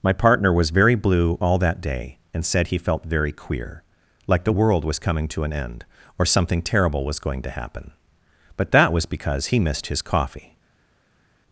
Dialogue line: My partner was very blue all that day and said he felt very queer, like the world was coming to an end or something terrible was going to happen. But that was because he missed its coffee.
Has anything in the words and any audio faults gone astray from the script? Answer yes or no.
yes